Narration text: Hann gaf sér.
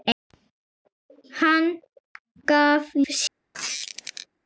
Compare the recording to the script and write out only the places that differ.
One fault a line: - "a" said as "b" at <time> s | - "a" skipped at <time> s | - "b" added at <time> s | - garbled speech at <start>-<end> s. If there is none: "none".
none